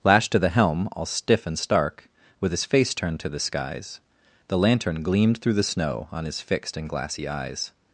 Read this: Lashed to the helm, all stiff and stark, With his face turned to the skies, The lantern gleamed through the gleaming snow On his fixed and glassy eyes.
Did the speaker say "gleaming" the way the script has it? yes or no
no